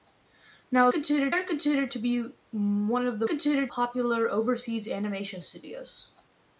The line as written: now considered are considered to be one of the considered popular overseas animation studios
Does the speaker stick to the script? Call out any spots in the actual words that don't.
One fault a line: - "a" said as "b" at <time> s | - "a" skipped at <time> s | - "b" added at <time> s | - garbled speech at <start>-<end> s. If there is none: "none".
none